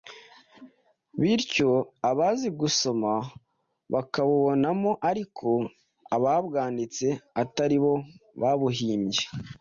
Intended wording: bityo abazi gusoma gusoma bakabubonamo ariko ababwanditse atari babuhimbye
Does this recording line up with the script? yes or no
no